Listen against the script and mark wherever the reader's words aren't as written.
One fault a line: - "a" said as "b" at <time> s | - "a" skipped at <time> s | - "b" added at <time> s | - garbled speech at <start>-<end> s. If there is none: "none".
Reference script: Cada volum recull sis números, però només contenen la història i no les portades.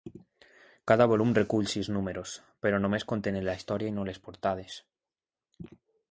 none